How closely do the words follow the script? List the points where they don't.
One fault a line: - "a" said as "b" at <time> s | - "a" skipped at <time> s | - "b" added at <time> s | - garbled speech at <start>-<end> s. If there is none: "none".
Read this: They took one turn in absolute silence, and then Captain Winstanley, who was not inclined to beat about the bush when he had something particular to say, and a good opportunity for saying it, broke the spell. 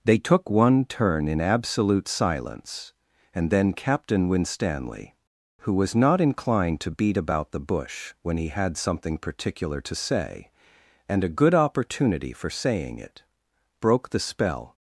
none